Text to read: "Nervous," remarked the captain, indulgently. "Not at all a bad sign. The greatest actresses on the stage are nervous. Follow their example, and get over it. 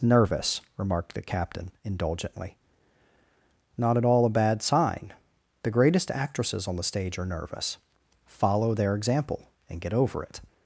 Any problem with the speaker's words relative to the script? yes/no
no